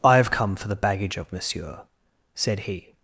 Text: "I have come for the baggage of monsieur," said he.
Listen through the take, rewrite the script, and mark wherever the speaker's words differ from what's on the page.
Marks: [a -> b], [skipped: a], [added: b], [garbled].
"I have come for the baggage of monsieur," said he.